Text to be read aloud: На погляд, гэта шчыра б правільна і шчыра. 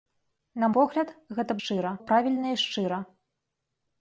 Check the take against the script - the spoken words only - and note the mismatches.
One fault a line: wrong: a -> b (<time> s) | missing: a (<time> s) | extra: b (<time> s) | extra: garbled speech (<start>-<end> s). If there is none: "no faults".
no faults